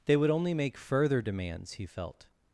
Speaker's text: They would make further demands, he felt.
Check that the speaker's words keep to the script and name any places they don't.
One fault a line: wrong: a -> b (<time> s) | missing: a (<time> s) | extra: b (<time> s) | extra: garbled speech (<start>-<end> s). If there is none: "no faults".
extra: only (0.3 s)